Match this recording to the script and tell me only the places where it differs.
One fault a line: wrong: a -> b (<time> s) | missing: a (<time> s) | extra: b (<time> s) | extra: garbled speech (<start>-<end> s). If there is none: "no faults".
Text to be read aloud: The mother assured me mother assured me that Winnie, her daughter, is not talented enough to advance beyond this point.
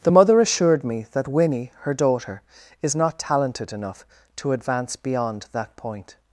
missing: mother assured me (1.1 s)
wrong: this -> that (5.5 s)